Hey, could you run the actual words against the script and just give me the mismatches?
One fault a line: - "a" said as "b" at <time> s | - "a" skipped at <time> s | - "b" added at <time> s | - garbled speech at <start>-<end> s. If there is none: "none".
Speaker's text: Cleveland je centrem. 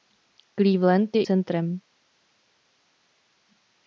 none